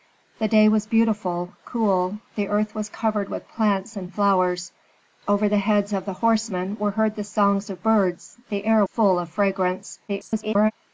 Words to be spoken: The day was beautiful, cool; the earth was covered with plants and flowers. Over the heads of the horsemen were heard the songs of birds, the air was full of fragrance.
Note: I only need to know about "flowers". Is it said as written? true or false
true